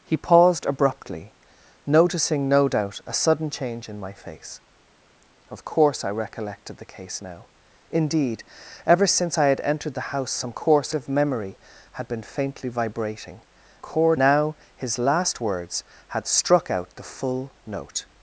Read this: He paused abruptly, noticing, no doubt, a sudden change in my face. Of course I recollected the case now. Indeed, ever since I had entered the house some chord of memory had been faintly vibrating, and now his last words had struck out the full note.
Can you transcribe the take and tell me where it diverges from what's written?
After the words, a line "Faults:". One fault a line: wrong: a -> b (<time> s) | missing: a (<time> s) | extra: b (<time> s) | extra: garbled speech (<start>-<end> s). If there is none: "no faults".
He paused abruptly, noticing, no doubt, a sudden change in my face. Of course I recollected the case now. Indeed, ever since I had entered the house some course of memory had been faintly vibrating, chord now his last words had struck out the full note.
Faults:
wrong: chord -> course (10.5 s)
wrong: and -> chord (13.8 s)